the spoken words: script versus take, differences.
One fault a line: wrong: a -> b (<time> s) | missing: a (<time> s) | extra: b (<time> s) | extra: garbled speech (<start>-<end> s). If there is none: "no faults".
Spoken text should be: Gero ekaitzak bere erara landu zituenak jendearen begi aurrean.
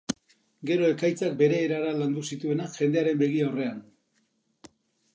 no faults